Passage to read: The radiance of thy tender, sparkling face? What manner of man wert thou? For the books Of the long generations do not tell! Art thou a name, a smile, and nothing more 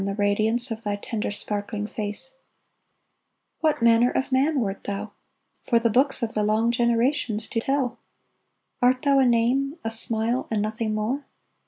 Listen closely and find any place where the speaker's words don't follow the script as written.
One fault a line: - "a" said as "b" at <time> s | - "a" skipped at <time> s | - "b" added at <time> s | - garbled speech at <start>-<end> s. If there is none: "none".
- "not" skipped at 7.6 s